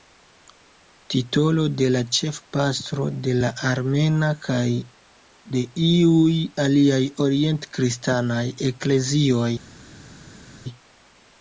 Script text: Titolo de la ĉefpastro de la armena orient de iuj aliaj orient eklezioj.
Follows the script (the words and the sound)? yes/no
no